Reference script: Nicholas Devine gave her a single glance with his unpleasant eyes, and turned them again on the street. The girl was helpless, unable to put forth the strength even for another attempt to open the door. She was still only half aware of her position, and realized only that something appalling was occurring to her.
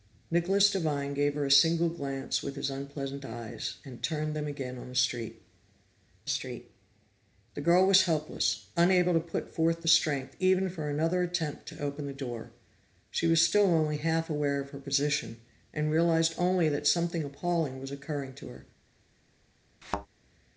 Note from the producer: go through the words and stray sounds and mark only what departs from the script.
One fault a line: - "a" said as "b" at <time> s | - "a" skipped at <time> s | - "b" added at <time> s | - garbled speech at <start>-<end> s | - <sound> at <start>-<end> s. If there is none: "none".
- "street" added at 6.3 s
- thud at 19.8-20.1 s